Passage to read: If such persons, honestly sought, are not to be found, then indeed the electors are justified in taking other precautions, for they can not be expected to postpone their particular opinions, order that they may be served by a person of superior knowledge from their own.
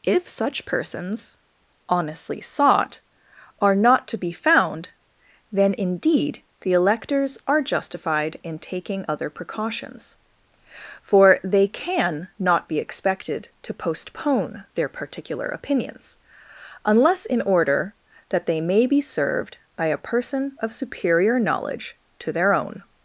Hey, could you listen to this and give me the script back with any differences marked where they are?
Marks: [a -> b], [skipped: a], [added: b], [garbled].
If such persons, honestly sought, are not to be found, then indeed the electors are justified in taking other precautions, for they can not be expected to postpone their particular opinions, [added: unless in] order that they may be served by a person of superior knowledge [from -> to] their own.